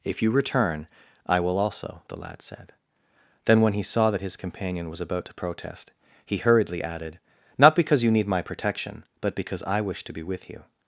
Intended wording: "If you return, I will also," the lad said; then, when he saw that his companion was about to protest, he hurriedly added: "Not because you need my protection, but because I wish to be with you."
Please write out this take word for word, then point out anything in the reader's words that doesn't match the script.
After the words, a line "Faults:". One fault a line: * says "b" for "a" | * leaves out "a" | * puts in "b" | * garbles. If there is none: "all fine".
"If you return, I will also," the lad said; then, when he saw that his companion was about to protest, he hurriedly added: "Not because you need my protection, but because I wish to be with you."
Faults:
all fine